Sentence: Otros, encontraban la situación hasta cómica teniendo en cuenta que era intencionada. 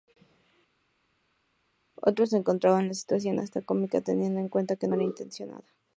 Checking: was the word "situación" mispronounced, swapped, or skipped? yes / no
no